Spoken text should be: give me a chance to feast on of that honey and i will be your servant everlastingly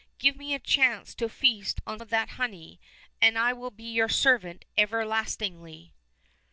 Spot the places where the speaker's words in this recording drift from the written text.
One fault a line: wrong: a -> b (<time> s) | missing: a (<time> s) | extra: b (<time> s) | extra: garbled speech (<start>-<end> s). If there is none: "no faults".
no faults